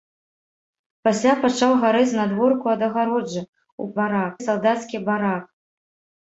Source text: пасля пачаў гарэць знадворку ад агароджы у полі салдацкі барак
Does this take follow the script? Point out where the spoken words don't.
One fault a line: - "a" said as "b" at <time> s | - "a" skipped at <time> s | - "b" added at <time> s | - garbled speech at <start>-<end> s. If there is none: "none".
- "полі" said as "барак" at 4.0 s